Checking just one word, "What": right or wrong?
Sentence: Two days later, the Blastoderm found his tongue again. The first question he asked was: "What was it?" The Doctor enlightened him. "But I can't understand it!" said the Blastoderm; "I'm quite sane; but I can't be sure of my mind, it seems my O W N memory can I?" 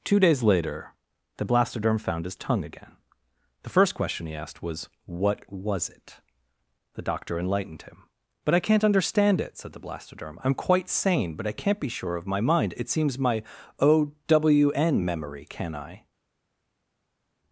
right